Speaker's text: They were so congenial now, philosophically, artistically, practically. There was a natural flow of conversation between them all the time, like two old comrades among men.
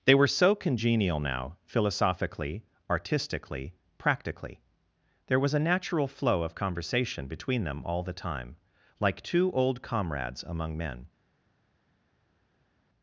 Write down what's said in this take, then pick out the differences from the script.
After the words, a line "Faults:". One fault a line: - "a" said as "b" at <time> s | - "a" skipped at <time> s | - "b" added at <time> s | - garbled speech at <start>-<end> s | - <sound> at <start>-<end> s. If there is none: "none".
They were so congenial now, philosophically, artistically, practically. There was a natural flow of conversation between them all the time, like two old comrades among men.
Faults:
none